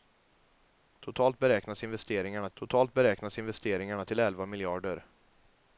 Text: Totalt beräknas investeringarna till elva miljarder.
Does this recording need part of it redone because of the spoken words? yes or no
yes